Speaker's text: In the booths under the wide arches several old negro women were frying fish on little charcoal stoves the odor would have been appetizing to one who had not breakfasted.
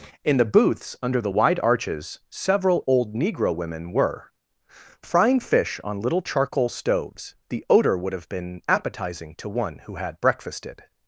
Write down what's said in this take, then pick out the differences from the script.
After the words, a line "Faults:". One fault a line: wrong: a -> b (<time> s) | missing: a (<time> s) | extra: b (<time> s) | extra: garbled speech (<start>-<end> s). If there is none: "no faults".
In the booths under the wide arches several old negro women were frying fish on little charcoal stoves the odor would have been appetizing to one who had breakfasted.
Faults:
missing: not (10.2 s)